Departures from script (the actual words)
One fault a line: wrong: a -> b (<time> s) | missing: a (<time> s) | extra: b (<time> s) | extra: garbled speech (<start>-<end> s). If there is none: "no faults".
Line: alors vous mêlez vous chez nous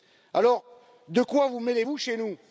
extra: de quoi (1.1 s)